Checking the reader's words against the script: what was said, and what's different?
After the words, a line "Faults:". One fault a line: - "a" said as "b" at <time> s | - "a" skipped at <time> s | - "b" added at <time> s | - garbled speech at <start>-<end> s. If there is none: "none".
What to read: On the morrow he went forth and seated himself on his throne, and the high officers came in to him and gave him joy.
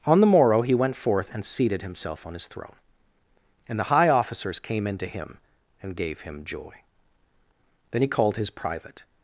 On the morrow he went forth and seated himself on his throne, and the high officers came in to him and gave him joy. Then he called his private
Faults:
- "Then he called his private" added at 7.9 s